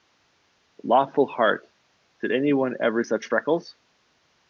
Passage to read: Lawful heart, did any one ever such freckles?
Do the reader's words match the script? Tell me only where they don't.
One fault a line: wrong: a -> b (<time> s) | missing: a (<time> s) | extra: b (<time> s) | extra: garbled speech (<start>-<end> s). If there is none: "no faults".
no faults